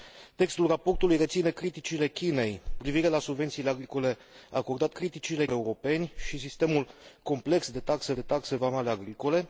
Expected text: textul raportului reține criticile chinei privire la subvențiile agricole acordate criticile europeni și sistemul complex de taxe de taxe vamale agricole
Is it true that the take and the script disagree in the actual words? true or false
false